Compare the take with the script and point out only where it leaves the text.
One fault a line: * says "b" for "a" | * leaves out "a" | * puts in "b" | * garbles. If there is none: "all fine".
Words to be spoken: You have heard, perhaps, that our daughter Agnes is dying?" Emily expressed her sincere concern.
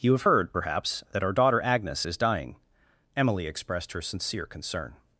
all fine